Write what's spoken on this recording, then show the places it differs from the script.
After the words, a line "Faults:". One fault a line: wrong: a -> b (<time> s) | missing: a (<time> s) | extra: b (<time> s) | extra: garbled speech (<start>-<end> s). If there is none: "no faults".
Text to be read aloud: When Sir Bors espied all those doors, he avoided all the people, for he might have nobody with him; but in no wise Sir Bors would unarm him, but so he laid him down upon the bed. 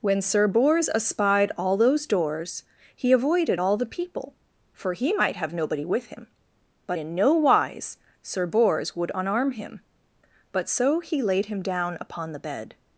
When Sir Bors espied all those doors, he avoided all the people, for he might have nobody with him; but in no wise Sir Bors would unarm him, but so he laid him down upon the bed.
Faults:
no faults